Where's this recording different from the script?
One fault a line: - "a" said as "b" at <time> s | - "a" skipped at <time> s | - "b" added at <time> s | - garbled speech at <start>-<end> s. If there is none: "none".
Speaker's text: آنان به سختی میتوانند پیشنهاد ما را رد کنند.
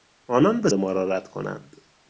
- "سختی میتوانند پیشنهاد" skipped at 0.7 s